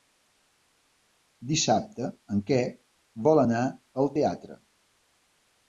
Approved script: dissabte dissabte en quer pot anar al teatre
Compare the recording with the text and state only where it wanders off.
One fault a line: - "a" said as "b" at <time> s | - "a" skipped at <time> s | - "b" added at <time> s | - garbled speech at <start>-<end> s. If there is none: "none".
- "dissabte" skipped at 2.1 s
- "pot" said as "vol" at 3.3 s